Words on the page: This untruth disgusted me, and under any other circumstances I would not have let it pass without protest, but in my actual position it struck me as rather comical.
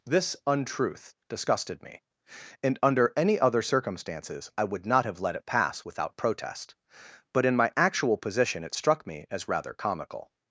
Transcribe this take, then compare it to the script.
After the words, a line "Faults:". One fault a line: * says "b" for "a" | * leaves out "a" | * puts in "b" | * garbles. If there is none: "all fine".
This untruth disgusted me, and under any other circumstances I would not have let it pass without protest, but in my actual position it struck me as rather comical.
Faults:
all fine